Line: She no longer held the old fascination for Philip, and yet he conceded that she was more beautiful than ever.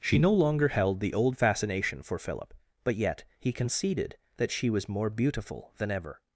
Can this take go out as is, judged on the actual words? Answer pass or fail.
fail